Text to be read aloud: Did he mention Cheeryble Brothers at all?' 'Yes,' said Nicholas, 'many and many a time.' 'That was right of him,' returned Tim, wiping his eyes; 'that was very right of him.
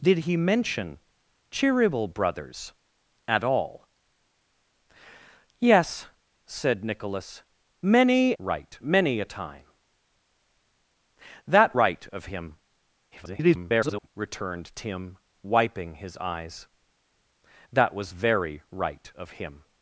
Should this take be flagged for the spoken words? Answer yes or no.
yes